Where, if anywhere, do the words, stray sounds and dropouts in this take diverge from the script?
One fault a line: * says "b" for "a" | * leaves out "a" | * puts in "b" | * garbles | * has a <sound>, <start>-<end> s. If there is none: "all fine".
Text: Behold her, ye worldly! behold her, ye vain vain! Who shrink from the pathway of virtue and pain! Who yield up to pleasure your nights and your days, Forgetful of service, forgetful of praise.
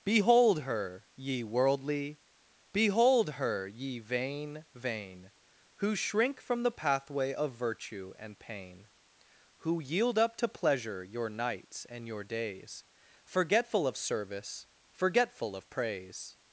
all fine